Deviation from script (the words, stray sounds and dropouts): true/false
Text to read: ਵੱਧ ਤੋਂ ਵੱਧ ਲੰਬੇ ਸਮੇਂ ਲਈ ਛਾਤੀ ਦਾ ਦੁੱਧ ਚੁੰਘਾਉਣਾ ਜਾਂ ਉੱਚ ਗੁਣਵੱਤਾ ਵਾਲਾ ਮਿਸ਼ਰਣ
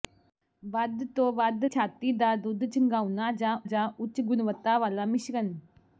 true